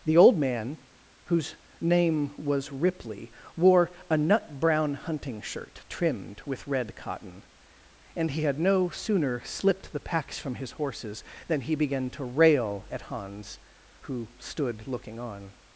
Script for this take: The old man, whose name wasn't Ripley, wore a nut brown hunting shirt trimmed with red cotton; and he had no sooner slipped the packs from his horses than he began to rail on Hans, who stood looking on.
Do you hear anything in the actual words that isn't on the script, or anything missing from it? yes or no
yes